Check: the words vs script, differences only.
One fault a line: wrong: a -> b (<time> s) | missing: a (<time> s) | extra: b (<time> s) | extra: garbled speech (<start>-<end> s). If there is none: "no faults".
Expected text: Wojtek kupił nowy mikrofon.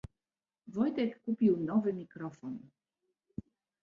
no faults